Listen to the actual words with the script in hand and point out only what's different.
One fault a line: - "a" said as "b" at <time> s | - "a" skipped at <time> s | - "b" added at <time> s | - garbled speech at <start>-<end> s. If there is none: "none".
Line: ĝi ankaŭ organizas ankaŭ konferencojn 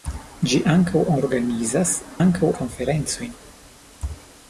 none